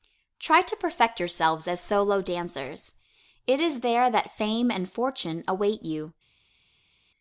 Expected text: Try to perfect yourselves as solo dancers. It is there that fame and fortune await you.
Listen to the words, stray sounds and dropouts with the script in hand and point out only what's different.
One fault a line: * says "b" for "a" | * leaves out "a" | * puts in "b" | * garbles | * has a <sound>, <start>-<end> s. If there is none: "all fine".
all fine